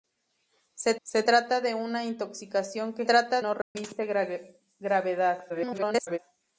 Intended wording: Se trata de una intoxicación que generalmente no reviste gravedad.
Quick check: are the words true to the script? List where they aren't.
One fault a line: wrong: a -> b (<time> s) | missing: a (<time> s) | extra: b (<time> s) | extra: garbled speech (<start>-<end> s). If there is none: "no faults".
extra: se (1.0 s)
wrong: generalmente -> trata (3.0 s)
extra: garbled speech (5.5-6.2 s)